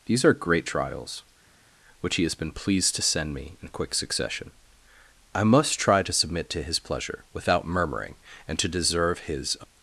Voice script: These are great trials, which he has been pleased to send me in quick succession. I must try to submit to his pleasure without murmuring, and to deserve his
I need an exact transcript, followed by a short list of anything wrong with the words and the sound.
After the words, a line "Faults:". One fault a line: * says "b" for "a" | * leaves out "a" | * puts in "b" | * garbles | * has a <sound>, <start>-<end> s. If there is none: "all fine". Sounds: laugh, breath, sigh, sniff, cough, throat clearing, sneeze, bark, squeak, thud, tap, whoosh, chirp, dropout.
These are great trials, which he has been pleased to send me in quick succession. I must try to submit to his pleasure without murmuring, and to deserve his
Faults:
all fine